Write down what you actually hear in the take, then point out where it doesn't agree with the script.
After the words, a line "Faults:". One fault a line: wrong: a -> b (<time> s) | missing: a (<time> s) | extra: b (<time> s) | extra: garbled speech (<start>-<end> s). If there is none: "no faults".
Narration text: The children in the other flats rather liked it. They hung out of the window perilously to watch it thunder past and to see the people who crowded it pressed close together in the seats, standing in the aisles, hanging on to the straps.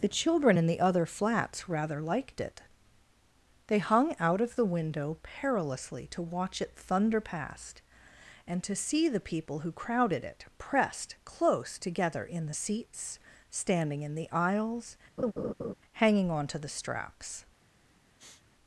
The children in the other flats rather liked it. They hung out of the window perilously to watch it thunder past and to see the people who crowded it pressed close together in the seats, standing in the aisles, hanging on to the straps.
Faults:
no faults